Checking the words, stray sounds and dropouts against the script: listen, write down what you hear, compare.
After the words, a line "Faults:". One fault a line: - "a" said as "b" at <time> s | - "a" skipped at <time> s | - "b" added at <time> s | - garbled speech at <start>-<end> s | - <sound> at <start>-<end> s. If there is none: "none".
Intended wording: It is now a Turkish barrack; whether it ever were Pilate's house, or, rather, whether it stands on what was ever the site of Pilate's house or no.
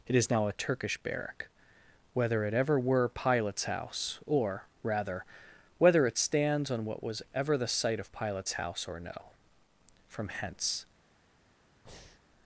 It is now a Turkish barrack; whether it ever were Pilate's house, or, rather, whether it stands on what was ever the site of Pilate's house or no. From hence
Faults:
- "From hence" added at 10.1 s
- breath at 11.9-12.2 s